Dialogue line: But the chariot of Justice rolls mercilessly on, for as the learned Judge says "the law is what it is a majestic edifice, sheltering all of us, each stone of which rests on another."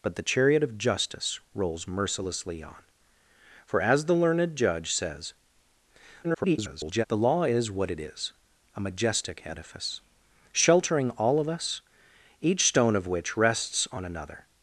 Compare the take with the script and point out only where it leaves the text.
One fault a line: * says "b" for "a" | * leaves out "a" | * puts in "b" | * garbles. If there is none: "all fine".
* garbles